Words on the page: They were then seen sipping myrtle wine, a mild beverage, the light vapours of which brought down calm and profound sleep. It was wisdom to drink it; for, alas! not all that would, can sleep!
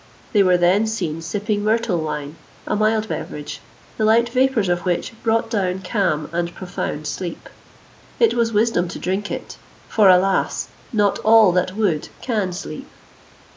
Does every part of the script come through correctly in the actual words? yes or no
yes